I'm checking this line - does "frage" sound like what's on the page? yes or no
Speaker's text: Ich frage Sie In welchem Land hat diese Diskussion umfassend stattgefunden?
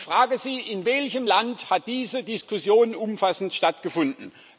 yes